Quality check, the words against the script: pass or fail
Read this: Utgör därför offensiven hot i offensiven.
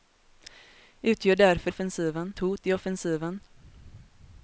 pass